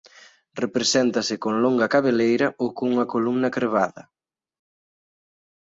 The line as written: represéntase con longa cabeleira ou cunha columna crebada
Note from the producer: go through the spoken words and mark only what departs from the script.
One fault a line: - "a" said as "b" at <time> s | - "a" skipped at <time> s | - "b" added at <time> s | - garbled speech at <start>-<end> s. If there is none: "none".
none